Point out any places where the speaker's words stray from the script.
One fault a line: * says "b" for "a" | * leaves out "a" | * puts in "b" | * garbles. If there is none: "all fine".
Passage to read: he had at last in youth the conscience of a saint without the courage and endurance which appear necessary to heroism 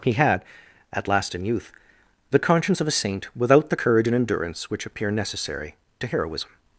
all fine